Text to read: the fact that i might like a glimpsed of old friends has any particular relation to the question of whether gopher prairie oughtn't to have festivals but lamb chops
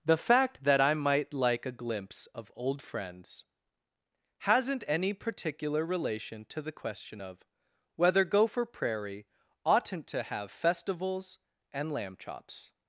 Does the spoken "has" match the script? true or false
false